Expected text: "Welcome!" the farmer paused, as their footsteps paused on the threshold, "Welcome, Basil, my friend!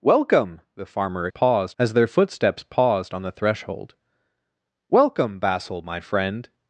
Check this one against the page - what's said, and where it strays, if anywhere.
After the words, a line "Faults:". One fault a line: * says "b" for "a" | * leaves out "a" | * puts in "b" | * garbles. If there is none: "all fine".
"Welcome!" the farmer paused, as their footsteps paused on the threshold, "Welcome, Basil, my friend!
Faults:
all fine